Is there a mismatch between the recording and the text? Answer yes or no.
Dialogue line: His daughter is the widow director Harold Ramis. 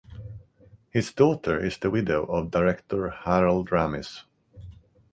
yes